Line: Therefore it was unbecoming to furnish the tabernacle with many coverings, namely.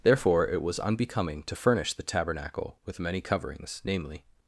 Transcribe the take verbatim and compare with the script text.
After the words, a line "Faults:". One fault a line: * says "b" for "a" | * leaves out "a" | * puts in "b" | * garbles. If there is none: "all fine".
Therefore it was unbecoming to furnish the tabernacle with many coverings, namely.
Faults:
all fine